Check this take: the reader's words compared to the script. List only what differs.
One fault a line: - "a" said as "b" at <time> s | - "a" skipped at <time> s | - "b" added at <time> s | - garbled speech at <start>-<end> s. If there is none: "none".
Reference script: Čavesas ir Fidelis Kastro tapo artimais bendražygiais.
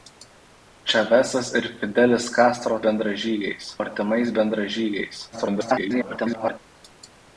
- "tapo" said as "bendražygiais" at 2.9 s
- garbled speech at 5.3-6.6 s